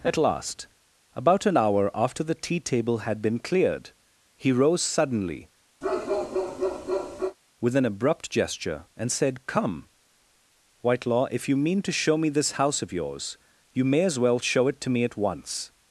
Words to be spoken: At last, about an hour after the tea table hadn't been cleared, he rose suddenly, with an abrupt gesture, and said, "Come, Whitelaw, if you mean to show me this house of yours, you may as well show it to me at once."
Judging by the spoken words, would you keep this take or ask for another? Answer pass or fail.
fail